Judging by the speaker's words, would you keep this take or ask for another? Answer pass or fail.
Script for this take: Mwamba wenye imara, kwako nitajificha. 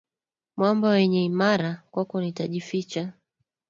pass